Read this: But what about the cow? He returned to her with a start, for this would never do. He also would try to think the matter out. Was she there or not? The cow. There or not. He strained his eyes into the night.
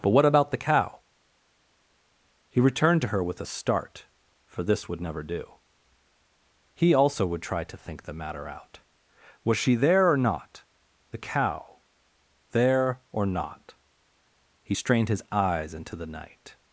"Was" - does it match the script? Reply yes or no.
yes